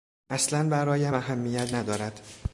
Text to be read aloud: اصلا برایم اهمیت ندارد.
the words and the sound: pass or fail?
pass